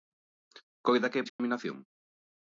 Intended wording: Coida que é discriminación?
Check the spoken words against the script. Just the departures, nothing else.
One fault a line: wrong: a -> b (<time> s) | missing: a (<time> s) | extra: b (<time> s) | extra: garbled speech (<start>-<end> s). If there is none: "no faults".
no faults